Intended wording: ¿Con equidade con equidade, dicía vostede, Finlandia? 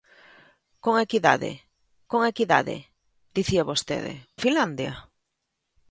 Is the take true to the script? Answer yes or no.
yes